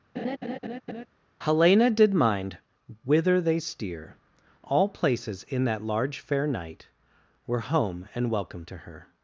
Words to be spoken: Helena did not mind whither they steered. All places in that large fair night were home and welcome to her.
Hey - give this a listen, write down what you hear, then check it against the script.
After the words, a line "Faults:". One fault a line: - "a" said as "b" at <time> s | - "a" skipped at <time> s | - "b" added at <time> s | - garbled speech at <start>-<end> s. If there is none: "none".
Helena did mind whither they steer. All places in that large fair night were home and welcome to her.
Faults:
- "not" skipped at 2.1 s
- "steered" said as "steer" at 3.6 s